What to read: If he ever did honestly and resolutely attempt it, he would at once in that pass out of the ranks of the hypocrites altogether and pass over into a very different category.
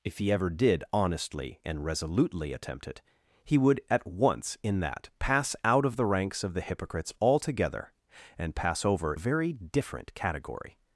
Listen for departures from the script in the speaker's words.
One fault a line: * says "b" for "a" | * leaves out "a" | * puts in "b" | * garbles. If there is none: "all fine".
* leaves out "into"